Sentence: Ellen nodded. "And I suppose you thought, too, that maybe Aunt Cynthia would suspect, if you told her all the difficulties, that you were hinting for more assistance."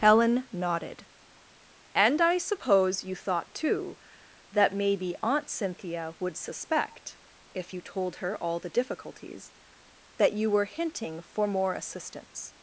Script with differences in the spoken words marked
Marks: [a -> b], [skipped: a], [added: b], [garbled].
[Ellen -> Helen] nodded. "And I suppose you thought, too, that maybe Aunt Cynthia would suspect, if you told her all the difficulties, that you were hinting for more assistance."